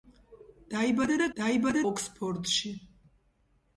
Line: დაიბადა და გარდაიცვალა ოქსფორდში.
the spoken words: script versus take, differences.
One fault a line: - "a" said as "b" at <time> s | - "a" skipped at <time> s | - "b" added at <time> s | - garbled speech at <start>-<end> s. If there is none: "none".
- "გარდაიცვალა" said as "დაიბადა" at 1.4 s